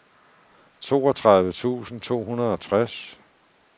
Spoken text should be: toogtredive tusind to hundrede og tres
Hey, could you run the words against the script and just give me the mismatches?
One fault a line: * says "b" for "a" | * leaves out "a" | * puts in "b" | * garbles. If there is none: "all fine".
all fine